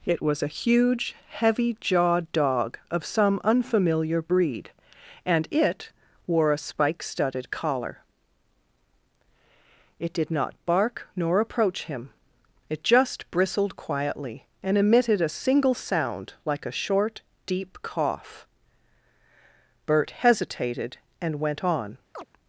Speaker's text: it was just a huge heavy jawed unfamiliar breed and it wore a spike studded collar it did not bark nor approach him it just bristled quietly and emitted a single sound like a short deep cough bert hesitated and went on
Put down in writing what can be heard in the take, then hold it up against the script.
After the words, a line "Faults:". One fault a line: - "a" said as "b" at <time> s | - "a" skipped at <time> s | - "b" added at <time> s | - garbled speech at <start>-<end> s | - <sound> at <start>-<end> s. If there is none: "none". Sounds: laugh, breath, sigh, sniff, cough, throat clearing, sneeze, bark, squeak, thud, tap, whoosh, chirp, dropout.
it was a huge heavy jawed dog of some unfamiliar breed and it wore a spike studded collar it did not bark nor approach him it just bristled quietly and emitted a single sound like a short deep cough bert hesitated and went on
Faults:
- "just" skipped at 0.4 s
- "dog of some" added at 2.3 s
- chirp at 22.1-22.3 s